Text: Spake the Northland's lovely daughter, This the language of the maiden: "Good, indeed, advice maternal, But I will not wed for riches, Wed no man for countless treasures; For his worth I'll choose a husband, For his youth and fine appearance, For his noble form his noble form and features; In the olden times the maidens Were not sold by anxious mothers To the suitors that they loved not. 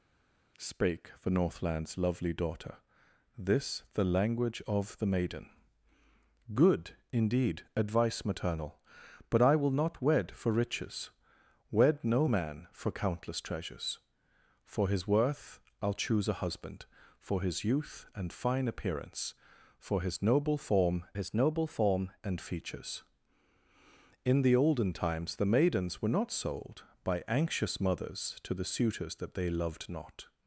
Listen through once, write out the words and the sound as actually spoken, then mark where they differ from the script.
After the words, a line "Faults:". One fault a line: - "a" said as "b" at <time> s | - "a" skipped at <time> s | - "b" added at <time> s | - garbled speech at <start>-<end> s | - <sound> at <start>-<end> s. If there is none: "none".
Spake the Northland's lovely daughter, This the language of the maiden: "Good, indeed, advice maternal, But I will not wed for riches, Wed no man for countless treasures; For his worth I'll choose a husband, For his youth and fine appearance, For his noble form his noble form and features; In the olden times the maidens Were not sold by anxious mothers To the suitors that they loved not.
Faults:
none